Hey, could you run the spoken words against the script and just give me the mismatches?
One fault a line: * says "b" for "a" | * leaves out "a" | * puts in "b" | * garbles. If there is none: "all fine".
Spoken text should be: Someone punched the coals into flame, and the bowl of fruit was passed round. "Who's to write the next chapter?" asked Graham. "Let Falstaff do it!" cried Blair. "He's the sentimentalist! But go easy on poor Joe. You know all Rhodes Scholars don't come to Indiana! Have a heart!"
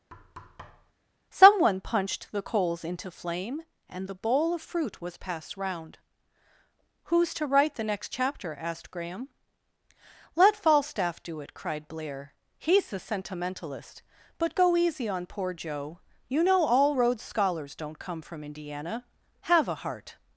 * says "from" for "to"